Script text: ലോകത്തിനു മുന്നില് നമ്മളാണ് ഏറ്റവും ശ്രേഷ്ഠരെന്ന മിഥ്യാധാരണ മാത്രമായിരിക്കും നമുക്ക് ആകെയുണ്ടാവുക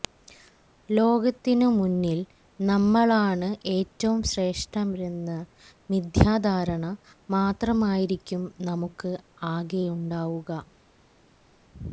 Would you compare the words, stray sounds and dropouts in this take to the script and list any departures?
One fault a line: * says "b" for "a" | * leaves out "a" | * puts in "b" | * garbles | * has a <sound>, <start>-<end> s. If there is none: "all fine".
all fine